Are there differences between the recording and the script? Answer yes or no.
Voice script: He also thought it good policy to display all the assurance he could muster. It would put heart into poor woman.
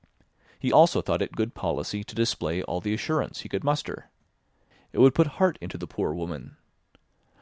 yes